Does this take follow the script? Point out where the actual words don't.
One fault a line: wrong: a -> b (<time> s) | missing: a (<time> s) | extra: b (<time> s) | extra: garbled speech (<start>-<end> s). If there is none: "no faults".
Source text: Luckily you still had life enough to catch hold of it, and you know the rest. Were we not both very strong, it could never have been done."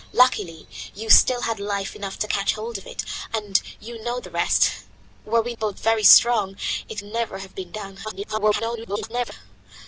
missing: not (5.5 s)
missing: could (7.0 s)
extra: garbled speech (8.0-9.3 s)